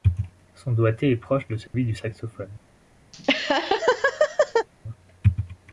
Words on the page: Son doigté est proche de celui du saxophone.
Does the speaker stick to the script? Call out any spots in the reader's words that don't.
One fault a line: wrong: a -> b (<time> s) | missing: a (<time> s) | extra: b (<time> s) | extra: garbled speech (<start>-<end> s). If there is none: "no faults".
no faults